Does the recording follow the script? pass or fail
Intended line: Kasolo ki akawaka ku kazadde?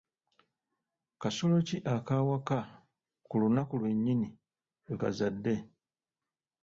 fail